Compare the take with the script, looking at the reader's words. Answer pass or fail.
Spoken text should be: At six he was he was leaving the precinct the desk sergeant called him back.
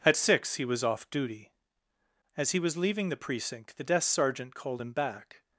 fail